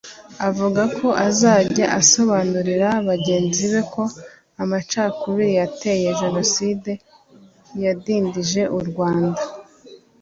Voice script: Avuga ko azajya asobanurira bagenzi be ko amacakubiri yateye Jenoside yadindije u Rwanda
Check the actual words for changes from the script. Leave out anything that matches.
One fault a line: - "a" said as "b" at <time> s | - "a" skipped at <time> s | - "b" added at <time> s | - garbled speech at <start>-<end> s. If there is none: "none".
none